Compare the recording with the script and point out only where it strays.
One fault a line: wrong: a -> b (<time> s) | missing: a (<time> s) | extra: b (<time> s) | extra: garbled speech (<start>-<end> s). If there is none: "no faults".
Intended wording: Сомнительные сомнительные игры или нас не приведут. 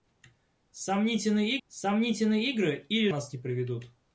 no faults